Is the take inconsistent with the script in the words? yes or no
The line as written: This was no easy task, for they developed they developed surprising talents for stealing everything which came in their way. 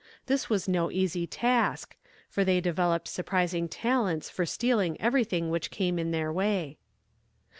yes